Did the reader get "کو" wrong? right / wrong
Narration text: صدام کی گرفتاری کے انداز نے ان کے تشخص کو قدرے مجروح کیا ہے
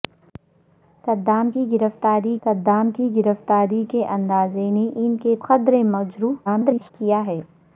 wrong